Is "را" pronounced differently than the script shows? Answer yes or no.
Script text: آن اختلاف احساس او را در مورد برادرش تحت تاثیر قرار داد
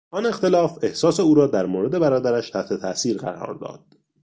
no